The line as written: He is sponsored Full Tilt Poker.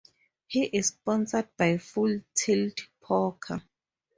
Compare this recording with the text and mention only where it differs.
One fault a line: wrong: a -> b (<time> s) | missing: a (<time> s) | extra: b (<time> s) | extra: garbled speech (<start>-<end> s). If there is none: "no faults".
extra: by (1.6 s)